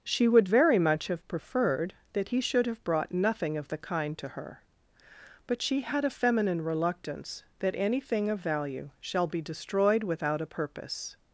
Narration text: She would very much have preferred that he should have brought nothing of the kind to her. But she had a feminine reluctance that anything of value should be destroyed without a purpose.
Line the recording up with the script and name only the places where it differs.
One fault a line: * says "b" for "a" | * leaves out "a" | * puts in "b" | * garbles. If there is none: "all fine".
* says "shall" for "should"